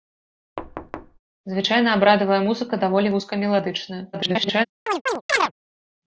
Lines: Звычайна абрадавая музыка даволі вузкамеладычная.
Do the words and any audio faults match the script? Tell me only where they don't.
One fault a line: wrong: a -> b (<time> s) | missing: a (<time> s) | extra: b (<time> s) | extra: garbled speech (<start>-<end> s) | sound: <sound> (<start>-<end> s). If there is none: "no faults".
sound: thud (0.6-1.2 s)
extra: garbled speech (4.1-4.7 s)
sound: chirp (4.9-5.5 s)